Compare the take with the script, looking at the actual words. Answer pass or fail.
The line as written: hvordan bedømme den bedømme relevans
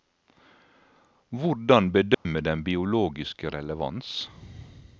fail